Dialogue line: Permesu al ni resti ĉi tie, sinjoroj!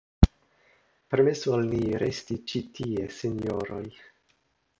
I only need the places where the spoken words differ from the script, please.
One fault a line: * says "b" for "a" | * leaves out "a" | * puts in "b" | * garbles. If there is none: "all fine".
all fine